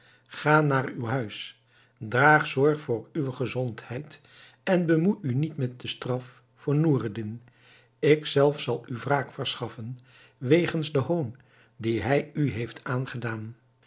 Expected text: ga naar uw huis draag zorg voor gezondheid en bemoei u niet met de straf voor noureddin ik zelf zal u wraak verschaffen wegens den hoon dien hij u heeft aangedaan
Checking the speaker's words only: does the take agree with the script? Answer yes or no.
no